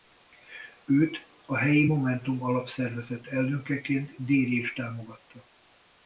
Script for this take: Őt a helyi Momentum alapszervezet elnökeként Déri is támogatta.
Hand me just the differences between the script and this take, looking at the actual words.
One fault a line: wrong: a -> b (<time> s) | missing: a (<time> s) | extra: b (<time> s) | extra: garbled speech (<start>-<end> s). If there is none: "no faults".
no faults